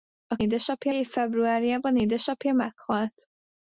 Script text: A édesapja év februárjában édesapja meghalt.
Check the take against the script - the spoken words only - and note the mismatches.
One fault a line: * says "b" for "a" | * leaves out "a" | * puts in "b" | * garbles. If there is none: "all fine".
all fine